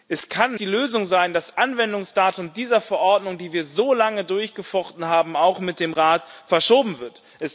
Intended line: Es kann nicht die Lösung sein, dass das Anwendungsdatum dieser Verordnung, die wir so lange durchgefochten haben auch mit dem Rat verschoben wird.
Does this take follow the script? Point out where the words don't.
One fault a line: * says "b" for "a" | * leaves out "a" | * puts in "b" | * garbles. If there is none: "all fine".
* leaves out "nicht"